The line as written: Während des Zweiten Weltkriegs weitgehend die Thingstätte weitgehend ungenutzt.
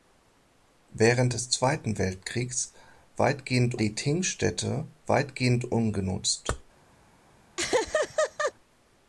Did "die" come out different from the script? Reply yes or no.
no